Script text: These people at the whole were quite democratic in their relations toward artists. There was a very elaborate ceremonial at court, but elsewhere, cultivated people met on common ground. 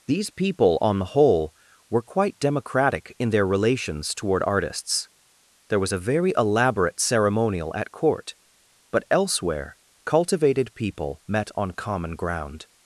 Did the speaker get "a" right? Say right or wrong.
right